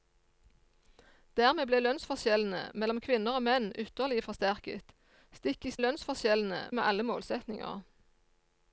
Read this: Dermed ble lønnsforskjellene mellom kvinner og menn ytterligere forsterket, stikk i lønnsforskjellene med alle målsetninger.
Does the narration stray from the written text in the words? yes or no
no